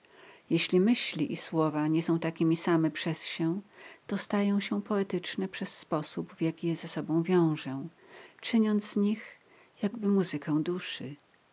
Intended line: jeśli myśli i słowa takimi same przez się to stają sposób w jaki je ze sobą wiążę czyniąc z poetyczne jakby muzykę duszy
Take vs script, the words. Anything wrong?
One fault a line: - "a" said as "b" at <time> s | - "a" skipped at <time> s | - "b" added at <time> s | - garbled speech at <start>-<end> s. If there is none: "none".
- "nie są" added at 1.9 s
- "się poetyczne przez" added at 4.6 s
- "poetyczne" said as "nich" at 9.0 s